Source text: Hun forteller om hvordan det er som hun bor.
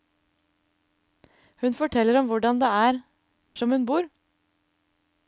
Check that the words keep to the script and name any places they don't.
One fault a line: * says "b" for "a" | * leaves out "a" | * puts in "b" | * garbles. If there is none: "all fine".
all fine